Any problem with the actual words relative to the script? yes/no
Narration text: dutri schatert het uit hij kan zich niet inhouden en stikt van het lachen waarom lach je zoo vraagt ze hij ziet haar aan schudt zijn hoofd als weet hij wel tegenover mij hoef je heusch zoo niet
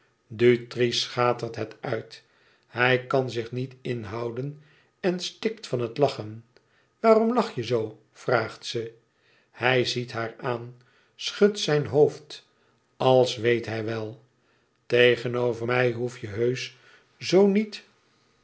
no